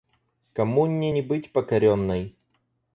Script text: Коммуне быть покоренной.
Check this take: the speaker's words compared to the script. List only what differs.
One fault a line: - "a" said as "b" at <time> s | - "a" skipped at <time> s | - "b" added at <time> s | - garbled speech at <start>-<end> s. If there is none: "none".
- "не" added at 1.1 s